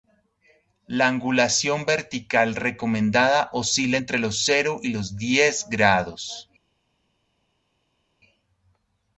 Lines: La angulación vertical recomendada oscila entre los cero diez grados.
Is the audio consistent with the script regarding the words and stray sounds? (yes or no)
no